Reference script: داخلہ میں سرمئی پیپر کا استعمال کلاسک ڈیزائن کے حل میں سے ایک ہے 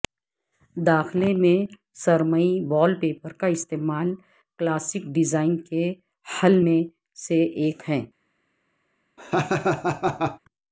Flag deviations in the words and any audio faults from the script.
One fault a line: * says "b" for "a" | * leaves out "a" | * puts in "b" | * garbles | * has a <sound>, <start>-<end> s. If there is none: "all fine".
* puts in "وال"
* has a laugh, 9.2-10.4 s